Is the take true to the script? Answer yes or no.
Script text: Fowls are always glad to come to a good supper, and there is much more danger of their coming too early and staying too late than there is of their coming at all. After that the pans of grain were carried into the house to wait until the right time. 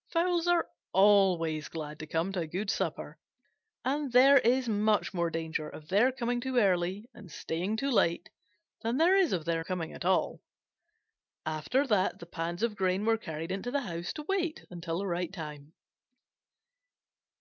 yes